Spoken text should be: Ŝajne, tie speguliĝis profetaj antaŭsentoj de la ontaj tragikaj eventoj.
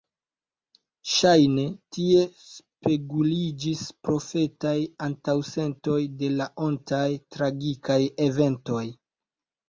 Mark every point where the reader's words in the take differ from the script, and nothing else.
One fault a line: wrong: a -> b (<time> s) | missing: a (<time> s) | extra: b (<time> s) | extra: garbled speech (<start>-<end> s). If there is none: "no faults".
no faults